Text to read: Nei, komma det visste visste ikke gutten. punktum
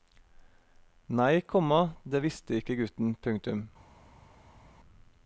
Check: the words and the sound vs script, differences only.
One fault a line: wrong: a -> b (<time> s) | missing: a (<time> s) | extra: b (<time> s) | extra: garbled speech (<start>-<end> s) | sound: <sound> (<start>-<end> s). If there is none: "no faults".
missing: visste (2.6 s)